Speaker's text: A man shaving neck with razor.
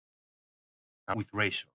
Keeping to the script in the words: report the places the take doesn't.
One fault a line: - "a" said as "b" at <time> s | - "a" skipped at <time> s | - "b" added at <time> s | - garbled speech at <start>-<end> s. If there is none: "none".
- "man shaving neck" skipped at 1.1 s